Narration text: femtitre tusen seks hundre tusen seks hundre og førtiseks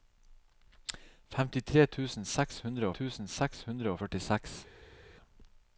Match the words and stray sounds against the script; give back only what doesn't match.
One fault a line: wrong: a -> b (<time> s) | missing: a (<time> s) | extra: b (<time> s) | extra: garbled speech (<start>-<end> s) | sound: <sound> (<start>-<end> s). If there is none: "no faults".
no faults